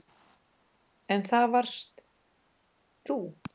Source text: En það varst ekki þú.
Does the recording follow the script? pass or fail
fail